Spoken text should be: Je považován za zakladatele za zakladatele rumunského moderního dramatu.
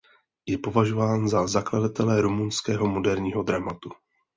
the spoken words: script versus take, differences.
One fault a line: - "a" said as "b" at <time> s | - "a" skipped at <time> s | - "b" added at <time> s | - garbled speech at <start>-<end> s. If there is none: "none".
- "za zakladatele" skipped at 2.2 s